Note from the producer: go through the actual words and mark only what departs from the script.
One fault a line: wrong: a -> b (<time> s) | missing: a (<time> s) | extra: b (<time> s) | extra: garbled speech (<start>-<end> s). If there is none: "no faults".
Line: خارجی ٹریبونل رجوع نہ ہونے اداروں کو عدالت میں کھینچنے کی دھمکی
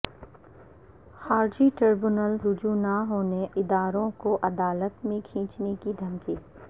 no faults